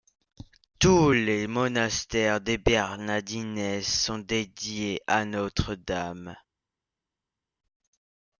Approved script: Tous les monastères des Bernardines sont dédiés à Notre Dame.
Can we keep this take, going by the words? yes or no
yes